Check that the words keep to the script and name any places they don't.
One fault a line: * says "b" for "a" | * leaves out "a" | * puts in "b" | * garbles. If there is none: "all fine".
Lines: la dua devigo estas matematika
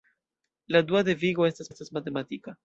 * puts in "estas"